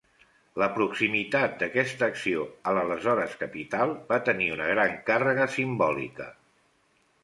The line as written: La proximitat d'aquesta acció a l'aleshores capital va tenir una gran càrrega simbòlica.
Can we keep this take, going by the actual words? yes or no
yes